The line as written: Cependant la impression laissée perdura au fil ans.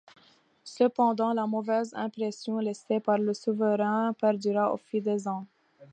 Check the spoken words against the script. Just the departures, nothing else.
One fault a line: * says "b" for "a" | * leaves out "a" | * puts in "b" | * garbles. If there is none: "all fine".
* puts in "mauvaise"
* puts in "par le souverain"
* puts in "des"